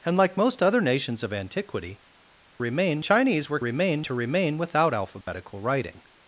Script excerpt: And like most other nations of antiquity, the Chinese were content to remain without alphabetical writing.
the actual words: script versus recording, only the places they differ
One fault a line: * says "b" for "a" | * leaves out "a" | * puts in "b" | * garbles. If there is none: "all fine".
* says "remain" for "the"
* says "remain" for "content"